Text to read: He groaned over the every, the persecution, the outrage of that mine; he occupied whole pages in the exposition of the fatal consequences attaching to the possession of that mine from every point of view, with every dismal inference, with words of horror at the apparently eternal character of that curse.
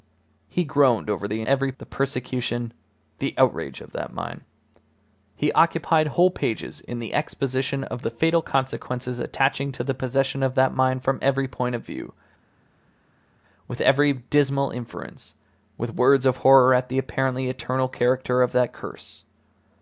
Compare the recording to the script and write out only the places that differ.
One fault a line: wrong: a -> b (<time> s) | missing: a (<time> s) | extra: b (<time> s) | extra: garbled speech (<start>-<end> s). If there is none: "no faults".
no faults